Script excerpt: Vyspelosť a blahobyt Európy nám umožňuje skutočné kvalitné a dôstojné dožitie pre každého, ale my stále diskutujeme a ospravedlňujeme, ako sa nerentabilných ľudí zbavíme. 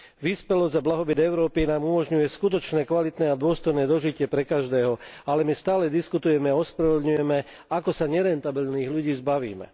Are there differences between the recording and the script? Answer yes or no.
no